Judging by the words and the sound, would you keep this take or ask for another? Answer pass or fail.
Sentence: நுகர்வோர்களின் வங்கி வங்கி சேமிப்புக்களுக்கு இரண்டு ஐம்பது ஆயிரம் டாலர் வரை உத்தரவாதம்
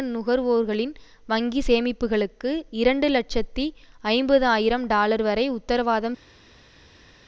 fail